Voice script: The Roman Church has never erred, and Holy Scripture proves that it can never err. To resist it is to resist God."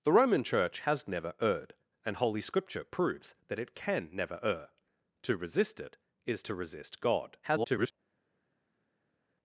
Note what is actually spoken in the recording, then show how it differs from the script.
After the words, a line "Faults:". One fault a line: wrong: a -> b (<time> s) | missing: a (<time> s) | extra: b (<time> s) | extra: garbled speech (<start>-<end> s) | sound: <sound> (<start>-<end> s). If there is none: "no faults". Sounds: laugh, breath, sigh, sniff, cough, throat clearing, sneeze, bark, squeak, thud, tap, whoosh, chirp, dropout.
The Roman Church has never erred, and Holy Scripture proves that it can never err. To resist it is to resist God." [garbled]
Faults:
extra: garbled speech (7.4-7.9 s)